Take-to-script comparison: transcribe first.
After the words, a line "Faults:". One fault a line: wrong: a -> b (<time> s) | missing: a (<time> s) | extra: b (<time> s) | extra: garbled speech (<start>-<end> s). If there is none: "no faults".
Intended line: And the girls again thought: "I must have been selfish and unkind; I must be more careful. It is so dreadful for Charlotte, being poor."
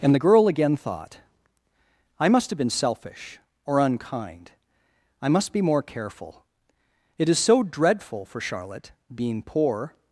And the girl again thought: "I must have been selfish or unkind; I must be more careful. It is so dreadful for Charlotte, being poor."
Faults:
wrong: girls -> girl (0.2 s)
wrong: and -> or (3.7 s)